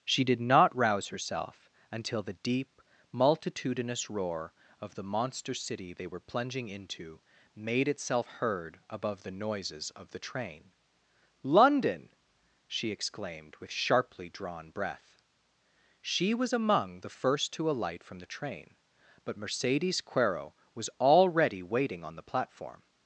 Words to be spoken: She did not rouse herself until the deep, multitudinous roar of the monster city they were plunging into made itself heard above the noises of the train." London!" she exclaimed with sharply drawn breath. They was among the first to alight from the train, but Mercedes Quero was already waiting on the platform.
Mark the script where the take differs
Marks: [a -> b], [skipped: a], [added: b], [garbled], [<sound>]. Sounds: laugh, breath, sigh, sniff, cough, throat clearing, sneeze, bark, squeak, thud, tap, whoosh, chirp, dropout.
She did not rouse herself until the deep, multitudinous roar of the monster city they were plunging into made itself heard above the noises of the train." London!" she exclaimed with sharply drawn breath. [They -> She] was among the first to alight from the train, but Mercedes Quero was already waiting on the platform.